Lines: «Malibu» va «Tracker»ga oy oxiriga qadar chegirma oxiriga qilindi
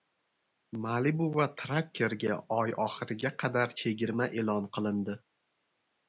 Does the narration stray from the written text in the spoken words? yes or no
yes